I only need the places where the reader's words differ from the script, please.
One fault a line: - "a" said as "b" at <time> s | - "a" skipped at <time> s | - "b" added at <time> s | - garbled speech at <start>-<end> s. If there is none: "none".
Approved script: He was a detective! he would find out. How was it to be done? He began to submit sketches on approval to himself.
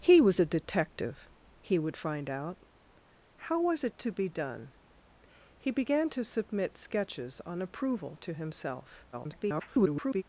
- garbled speech at 9.1-10.2 s